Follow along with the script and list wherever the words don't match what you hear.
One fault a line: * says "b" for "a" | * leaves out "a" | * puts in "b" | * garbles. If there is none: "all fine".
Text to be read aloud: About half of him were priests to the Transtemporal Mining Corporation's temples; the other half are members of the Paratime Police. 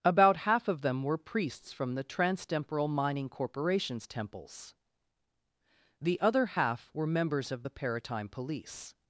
* says "them" for "him"
* says "from" for "to"
* says "were" for "are"